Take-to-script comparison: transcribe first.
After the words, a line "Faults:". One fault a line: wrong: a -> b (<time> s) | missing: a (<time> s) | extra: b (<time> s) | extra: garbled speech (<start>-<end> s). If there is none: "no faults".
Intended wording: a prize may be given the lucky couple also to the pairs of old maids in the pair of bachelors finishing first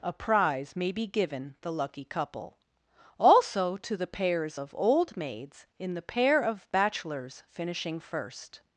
a prize may be given the lucky couple also to the pairs of old maids in the pair of bachelors finishing first
Faults:
no faults